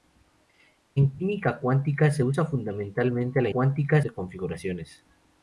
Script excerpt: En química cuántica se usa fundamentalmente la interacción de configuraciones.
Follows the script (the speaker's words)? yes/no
no